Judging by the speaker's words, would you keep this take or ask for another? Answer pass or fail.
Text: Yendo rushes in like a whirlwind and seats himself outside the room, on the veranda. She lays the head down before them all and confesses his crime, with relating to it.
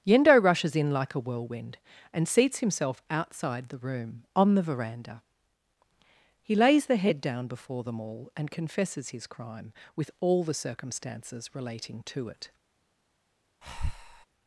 fail